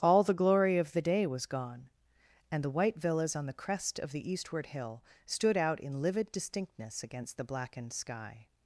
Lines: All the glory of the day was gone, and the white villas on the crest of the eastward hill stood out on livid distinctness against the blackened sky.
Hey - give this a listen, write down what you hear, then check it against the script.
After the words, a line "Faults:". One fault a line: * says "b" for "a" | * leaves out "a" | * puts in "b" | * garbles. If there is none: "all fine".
All the glory of the day was gone, and the white villas on the crest of the eastward hill stood out in livid distinctness against the blackened sky.
Faults:
* says "in" for "on"